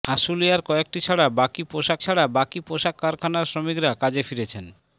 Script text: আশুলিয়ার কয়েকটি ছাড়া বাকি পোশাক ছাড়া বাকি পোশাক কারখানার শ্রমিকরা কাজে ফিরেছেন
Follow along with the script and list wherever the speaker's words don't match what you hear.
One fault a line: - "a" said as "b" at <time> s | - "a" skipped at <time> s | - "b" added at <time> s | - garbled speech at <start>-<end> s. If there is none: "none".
none